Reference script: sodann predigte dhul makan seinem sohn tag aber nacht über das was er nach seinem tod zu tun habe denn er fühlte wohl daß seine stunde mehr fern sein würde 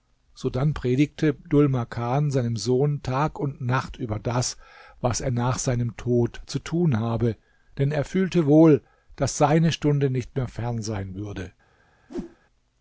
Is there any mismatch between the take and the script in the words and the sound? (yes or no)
yes